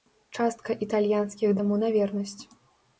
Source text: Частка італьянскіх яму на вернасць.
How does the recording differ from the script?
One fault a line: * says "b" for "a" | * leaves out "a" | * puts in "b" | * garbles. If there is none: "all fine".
all fine